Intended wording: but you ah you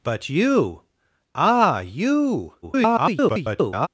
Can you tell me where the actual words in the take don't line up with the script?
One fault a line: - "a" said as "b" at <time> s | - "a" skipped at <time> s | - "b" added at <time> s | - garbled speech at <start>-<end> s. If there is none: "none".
- garbled speech at 2.6-3.9 s